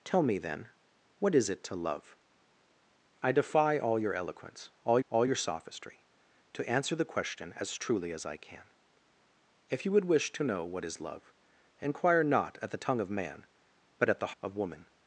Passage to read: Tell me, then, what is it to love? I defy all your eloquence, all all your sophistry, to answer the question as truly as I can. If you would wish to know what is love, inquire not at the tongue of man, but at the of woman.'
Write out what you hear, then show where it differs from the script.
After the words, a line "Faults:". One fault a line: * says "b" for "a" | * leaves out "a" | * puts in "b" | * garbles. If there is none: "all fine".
Tell me, then, what is it to love? I defy all your eloquence, all all your sophistry, to answer the question as truly as I can. If you would wish to know what is love, inquire not at the tongue of man, but at the of woman.'
Faults:
all fine